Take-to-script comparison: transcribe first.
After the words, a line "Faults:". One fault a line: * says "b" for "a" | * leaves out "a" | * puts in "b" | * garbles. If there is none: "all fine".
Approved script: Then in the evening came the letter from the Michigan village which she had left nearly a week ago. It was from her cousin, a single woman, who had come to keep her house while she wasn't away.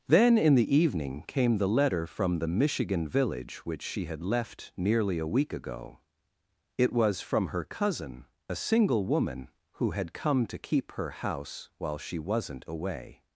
Then in the evening came the letter from the Michigan village which she had left nearly a week ago. It was from her cousin, a single woman, who had come to keep her house while she wasn't away.
Faults:
all fine